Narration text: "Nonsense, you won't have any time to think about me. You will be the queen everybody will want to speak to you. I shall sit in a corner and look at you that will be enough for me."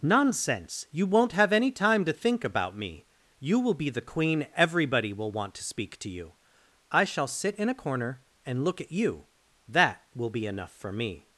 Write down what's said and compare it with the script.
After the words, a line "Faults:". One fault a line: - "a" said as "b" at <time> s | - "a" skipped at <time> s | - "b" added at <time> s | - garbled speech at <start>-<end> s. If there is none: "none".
"Nonsense, you won't have any time to think about me. You will be the queen everybody will want to speak to you. I shall sit in a corner and look at you that will be enough for me."
Faults:
none